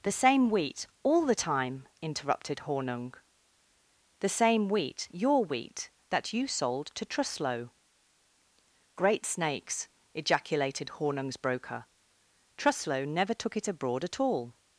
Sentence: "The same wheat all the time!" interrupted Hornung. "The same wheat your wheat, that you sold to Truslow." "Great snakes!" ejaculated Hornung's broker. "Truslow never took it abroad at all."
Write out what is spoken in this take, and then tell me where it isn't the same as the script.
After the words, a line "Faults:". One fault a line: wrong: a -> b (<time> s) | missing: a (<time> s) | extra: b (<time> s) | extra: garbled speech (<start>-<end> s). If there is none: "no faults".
"The same wheat all the time!" interrupted Hornung. "The same wheat your wheat, that you sold to Truslow." "Great snakes!" ejaculated Hornung's broker. "Truslow never took it abroad at all."
Faults:
no faults